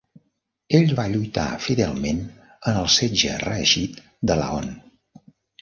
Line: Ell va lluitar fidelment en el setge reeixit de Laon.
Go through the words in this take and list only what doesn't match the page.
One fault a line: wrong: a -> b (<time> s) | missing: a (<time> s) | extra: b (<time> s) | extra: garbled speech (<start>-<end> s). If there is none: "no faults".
no faults